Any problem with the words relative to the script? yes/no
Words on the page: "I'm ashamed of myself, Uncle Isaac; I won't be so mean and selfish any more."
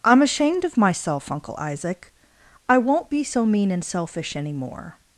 no